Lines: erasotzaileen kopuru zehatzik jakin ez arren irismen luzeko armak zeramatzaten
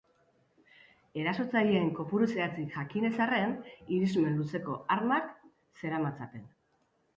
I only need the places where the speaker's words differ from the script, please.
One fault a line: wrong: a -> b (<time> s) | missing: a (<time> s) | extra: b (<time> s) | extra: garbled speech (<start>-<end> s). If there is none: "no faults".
no faults